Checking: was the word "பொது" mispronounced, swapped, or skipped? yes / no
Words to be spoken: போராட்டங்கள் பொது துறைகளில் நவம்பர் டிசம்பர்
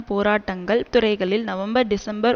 yes